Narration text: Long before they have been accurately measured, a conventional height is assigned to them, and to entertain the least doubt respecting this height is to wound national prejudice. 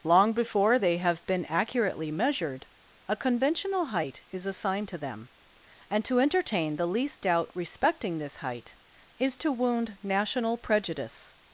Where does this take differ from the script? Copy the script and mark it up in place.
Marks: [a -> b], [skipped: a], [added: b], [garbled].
Long before they have been accurately measured, a conventional height is assigned to them, and to entertain the least doubt respecting this height is to wound national prejudice.